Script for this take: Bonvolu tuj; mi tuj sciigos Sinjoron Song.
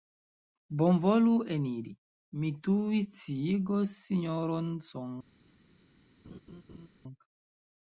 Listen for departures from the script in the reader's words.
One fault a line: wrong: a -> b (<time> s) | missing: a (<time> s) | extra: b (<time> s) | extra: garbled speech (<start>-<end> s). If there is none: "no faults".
wrong: tuj -> eniri (1.6 s)